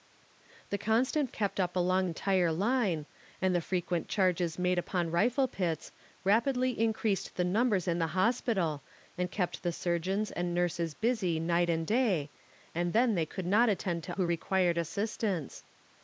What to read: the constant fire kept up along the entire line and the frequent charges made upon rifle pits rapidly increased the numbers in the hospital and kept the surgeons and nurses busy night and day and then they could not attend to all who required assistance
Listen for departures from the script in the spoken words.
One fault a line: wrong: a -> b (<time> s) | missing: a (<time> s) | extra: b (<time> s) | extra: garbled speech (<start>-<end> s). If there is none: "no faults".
missing: fire (1.3 s)
missing: the (2.1 s)
missing: all (14.2 s)